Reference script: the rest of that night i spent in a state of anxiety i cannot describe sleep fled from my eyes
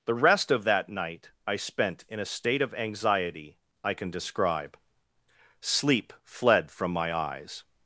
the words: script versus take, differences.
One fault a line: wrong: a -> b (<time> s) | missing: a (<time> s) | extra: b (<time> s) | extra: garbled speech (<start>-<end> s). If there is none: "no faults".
wrong: cannot -> can (3.9 s)